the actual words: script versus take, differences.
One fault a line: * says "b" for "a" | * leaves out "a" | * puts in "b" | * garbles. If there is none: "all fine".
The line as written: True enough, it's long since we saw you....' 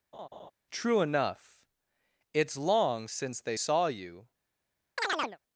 * says "they" for "we"